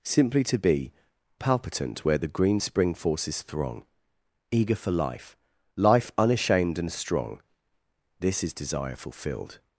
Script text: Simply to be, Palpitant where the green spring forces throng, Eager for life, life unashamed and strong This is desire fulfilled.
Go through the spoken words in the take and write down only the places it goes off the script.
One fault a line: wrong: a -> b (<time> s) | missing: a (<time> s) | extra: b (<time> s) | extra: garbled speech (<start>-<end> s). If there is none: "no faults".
no faults